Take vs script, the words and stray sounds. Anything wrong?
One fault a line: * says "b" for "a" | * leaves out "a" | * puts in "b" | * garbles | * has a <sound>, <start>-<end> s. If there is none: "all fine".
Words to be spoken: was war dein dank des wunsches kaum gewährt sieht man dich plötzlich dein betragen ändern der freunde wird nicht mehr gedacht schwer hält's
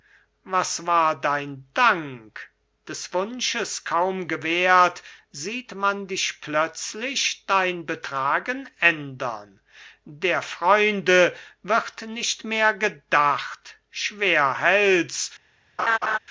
* has a laugh, 15.8-16.2 s